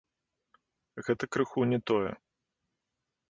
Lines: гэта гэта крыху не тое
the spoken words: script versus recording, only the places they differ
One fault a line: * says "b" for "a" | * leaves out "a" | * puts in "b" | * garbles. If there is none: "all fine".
* leaves out "гэта"